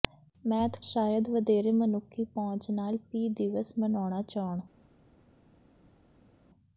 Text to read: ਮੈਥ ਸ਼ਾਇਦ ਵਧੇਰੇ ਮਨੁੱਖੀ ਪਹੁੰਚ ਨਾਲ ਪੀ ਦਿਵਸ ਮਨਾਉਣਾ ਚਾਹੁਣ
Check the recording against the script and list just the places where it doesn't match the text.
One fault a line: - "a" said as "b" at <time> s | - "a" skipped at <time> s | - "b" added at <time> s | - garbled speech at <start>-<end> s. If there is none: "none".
none